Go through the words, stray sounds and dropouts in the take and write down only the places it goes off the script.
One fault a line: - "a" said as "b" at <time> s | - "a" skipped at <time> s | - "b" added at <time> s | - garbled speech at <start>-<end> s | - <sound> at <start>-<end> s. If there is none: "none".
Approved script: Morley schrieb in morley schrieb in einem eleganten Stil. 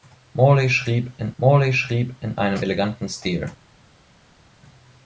none